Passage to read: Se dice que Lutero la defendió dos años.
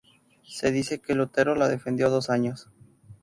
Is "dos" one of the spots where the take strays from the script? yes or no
no